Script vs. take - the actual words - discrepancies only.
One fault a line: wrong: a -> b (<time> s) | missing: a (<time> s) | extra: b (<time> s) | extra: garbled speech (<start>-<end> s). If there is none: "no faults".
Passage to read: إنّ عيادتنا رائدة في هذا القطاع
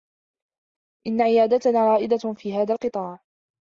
no faults